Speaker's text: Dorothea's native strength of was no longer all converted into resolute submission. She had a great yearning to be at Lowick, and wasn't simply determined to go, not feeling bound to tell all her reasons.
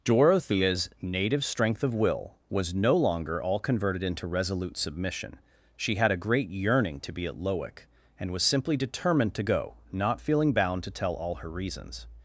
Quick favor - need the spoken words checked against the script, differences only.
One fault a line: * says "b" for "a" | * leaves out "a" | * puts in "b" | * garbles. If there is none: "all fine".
* puts in "will"
* says "was" for "wasn't"